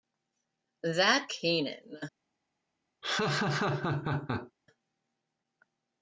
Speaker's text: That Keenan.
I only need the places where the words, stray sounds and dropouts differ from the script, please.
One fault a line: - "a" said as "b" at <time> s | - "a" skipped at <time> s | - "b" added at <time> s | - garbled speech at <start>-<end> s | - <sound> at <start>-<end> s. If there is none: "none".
- laugh at 3.0-4.5 s